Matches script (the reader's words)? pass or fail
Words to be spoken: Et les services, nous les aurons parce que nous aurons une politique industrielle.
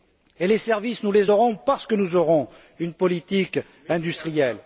pass